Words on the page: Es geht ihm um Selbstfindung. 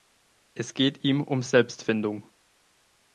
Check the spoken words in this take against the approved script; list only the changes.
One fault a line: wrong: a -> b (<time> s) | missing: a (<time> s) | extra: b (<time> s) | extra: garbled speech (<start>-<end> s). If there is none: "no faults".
no faults